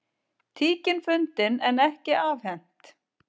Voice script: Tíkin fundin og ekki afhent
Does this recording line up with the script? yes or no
no